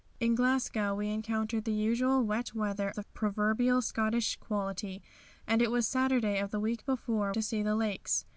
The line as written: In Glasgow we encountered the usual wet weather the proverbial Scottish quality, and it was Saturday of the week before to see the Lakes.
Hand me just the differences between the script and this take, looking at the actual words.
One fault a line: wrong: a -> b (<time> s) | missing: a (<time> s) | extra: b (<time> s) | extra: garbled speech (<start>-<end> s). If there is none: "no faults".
no faults